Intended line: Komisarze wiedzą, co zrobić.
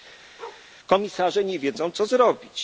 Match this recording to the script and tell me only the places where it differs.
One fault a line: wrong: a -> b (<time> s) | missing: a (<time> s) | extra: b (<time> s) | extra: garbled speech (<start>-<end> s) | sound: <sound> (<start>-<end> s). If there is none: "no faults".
sound: bark (0.4-0.7 s)
extra: nie (1.4 s)